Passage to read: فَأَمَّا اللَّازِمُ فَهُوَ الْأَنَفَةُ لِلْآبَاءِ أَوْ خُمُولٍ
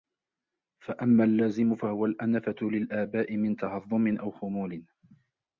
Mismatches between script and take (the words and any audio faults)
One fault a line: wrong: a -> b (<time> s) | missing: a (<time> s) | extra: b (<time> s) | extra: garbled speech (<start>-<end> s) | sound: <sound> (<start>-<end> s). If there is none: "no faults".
extra: مِنْ تَهَضُّمٍ (3.4 s)